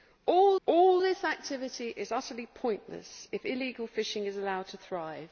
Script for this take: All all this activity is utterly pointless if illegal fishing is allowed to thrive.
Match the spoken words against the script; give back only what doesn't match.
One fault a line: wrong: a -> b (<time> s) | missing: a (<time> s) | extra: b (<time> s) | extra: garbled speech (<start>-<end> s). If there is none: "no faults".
no faults